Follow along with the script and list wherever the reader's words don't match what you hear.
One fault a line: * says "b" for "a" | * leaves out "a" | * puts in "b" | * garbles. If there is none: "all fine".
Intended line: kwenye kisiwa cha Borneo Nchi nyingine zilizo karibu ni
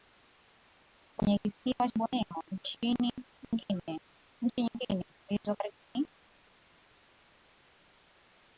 * leaves out "cha"